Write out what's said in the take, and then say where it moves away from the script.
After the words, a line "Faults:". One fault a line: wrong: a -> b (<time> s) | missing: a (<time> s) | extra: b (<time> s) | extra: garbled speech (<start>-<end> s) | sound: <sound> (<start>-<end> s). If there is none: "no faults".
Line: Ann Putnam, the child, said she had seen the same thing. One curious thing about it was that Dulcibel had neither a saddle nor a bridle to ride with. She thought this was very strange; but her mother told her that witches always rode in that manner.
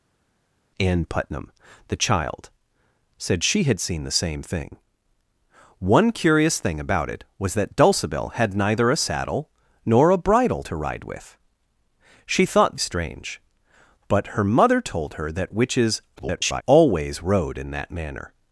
Ann Putnam, the child, said she had seen the same thing. One curious thing about it was that Dulcibel had neither a saddle nor a bridle to ride with. She thought strange; but her mother told her that witches [garbled] always rode in that manner.
Faults:
missing: this was very (12.8 s)
extra: garbled speech (16.2-16.6 s)